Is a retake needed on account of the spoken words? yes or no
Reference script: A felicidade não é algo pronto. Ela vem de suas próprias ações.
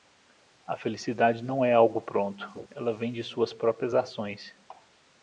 no